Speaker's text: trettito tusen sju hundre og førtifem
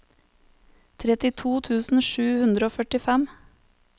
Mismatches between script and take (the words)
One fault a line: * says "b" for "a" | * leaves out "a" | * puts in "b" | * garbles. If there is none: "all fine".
all fine